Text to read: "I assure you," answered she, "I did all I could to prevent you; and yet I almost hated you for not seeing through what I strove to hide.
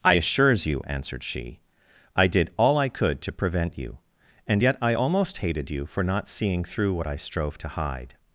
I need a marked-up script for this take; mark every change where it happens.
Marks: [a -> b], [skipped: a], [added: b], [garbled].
"I [assure -> assures] you," answered she, "I did all I could to prevent you; and yet I almost hated you for not seeing through what I strove to hide.